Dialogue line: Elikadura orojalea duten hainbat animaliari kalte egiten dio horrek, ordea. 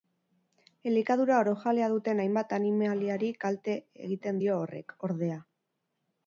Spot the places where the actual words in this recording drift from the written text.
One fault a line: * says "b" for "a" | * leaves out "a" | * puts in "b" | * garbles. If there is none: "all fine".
all fine